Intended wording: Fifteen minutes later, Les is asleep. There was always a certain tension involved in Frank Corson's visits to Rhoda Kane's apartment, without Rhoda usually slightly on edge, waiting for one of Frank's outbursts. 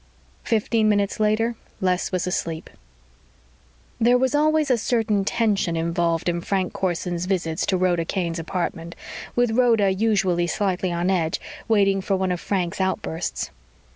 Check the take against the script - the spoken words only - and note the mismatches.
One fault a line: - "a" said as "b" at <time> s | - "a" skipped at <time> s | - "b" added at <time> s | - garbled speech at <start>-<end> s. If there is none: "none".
- "is" said as "was" at 2.1 s
- "without" said as "with" at 9.3 s